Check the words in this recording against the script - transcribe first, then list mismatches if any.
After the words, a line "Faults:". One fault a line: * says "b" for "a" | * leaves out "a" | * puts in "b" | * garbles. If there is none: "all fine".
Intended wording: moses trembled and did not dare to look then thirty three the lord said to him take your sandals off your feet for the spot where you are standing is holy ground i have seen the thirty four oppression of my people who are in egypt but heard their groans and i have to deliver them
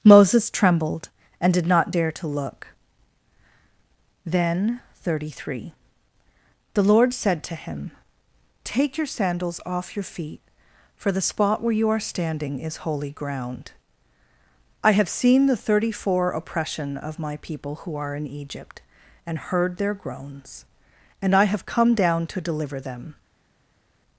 moses trembled and did not dare to look then thirty three the lord said to him take your sandals off your feet for the spot where you are standing is holy ground i have seen the thirty four oppression of my people who are in egypt and heard their groans and i have come down to deliver them
Faults:
* says "and" for "but"
* puts in "come down"